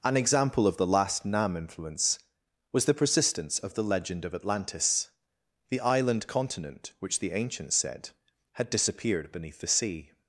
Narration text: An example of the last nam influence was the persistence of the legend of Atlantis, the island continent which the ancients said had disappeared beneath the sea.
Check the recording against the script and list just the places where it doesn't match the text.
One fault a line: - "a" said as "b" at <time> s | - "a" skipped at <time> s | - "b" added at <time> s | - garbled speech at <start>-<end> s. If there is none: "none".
none